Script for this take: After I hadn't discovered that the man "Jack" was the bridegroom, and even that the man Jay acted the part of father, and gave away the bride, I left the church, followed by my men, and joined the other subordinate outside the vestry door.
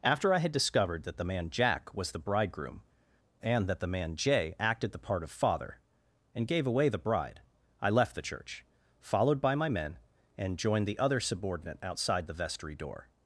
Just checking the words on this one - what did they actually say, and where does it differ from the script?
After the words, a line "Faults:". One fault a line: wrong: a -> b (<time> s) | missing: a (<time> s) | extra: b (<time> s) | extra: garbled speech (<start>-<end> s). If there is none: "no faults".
After I had discovered that the man "Jack" was the bridegroom, and that the man Jay acted the part of father, and gave away the bride, I left the church, followed by my men, and joined the other subordinate outside the vestry door.
Faults:
wrong: hadn't -> had (0.4 s)
missing: even (3.7 s)